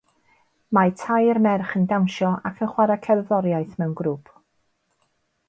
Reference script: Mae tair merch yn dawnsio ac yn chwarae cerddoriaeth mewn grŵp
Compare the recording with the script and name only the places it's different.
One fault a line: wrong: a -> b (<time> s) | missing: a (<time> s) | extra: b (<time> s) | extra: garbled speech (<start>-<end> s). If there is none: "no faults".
no faults